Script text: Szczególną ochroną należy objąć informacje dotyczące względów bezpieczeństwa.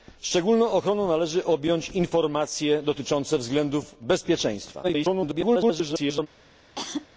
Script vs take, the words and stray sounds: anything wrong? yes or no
yes